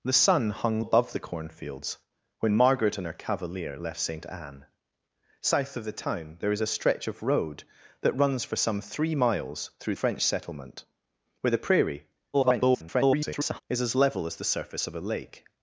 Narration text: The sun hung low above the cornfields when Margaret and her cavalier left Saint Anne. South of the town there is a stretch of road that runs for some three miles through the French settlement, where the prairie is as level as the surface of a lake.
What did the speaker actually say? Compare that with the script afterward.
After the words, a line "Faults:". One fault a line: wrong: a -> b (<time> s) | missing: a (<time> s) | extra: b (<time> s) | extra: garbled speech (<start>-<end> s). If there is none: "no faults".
The sun hung above the cornfields when Margaret and her cavalier left Saint Anne. South of the town there is a stretch of road that runs for some three miles through French settlement, where the prairie [garbled] is as level as the surface of a lake.
Faults:
missing: low (0.8 s)
missing: the (10.0 s)
extra: garbled speech (12.3-13.6 s)